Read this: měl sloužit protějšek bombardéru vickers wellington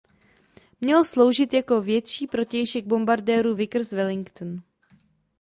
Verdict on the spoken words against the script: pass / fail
fail